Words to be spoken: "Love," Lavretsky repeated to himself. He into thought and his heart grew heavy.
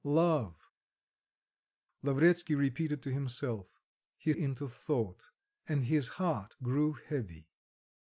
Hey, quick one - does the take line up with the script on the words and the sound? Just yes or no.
yes